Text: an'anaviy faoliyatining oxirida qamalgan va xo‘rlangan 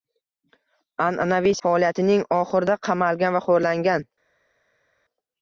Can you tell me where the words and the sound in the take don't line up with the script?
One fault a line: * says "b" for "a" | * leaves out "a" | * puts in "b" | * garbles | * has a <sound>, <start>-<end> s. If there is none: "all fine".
all fine